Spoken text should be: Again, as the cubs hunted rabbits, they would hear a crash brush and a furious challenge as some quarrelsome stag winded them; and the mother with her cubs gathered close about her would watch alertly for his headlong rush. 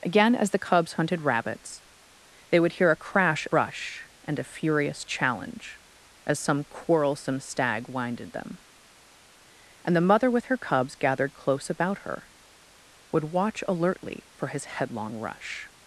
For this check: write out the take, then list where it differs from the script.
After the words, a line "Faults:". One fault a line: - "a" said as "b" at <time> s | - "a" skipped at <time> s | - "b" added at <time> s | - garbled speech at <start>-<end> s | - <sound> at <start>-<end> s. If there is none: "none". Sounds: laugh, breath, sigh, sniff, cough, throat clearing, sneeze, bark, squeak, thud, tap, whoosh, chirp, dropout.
Again, as the cubs hunted rabbits, they would hear a crash brush and a furious challenge as some quarrelsome stag winded them; and the mother with her cubs gathered close about her would watch alertly for his headlong rush.
Faults:
none